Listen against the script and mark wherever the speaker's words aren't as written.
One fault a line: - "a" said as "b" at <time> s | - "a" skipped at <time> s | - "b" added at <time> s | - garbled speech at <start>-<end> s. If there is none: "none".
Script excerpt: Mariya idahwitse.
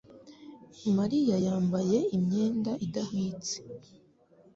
- "yambaye imyenda" added at 1.4 s